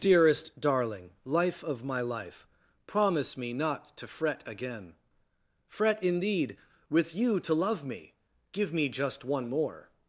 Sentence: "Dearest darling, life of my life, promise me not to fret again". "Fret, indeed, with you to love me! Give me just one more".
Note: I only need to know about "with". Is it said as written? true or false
true